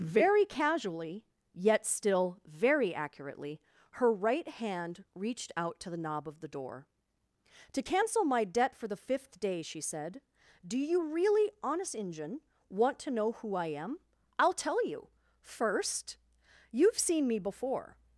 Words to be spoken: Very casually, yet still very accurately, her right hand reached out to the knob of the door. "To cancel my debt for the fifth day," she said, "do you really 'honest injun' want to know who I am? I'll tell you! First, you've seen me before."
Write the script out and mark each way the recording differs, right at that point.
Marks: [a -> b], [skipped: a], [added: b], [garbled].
Very casually, yet still very accurately, her right hand reached out to the knob of the door. "To cancel my debt for the fifth day," she said, "do you really 'honest injun' want to know who I am? I'll tell you! First, you've seen me before."